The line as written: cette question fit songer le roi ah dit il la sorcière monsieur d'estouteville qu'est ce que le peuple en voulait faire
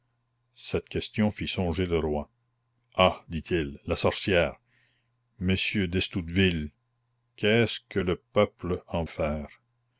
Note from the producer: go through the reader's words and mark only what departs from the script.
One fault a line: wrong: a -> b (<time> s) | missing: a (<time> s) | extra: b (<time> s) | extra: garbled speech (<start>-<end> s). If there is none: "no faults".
missing: voulait (9.0 s)